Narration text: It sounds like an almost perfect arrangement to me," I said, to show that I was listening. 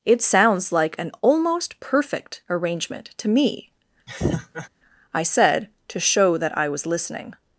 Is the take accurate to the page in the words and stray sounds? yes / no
no